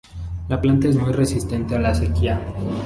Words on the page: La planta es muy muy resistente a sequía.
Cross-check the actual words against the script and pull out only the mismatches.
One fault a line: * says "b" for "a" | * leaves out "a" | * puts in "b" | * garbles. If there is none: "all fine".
* leaves out "muy"
* puts in "la"